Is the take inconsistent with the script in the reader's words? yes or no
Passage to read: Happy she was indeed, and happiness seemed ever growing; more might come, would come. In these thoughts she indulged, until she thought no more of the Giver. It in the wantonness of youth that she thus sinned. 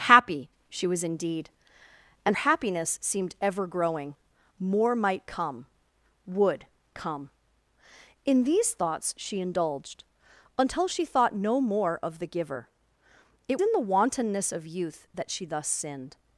no